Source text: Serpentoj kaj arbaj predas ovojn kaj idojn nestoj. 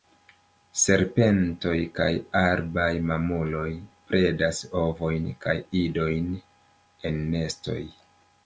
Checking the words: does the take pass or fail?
fail